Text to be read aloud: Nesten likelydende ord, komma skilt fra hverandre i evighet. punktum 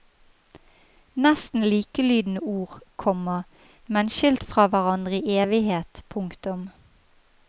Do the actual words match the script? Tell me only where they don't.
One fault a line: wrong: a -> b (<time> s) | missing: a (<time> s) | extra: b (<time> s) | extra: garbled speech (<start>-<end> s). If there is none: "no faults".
extra: men (4.0 s)